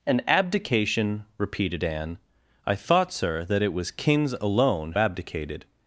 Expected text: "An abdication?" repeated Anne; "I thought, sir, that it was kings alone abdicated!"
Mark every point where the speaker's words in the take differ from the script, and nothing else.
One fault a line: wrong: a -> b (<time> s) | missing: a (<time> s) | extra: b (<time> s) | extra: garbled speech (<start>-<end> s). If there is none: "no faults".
no faults